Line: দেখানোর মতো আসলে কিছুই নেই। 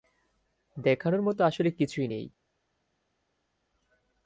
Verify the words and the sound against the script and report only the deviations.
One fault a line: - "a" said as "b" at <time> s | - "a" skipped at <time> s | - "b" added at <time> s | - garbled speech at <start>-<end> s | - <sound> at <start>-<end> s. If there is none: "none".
none